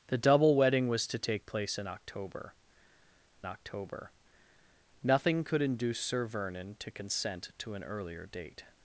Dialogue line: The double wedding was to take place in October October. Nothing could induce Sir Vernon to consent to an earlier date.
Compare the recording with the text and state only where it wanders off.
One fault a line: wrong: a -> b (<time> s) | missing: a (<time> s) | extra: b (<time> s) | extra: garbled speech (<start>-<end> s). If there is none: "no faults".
no faults